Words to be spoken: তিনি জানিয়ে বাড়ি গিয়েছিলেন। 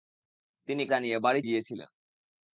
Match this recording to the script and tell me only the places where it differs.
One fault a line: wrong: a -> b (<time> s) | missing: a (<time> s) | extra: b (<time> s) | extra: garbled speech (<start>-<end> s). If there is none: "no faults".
no faults